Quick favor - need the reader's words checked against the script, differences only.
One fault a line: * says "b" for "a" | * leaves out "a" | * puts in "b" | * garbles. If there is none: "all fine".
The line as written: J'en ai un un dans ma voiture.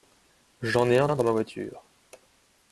all fine